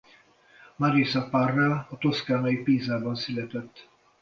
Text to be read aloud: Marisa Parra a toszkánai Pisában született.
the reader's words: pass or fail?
pass